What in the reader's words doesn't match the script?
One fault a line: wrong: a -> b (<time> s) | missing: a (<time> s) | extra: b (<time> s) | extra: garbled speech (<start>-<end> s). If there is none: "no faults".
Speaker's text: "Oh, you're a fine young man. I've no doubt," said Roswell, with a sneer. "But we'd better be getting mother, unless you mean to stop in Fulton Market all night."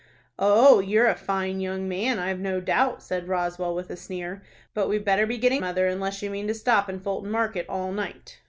no faults